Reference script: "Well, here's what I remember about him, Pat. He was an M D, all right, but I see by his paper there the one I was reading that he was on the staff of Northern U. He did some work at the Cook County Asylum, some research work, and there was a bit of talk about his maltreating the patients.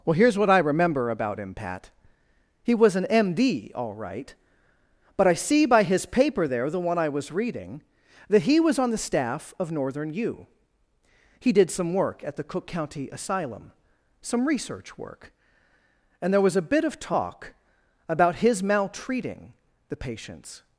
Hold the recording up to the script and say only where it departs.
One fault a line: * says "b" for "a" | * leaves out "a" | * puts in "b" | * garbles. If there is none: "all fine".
all fine